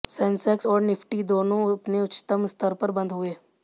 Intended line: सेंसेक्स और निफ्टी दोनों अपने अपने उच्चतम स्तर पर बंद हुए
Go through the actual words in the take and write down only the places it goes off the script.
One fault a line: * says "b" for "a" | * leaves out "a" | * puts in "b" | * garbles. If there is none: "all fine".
* leaves out "अपने"